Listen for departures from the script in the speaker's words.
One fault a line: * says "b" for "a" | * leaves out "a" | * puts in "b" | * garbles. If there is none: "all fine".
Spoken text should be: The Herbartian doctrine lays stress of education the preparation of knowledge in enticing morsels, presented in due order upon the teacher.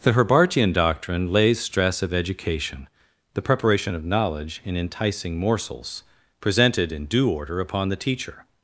all fine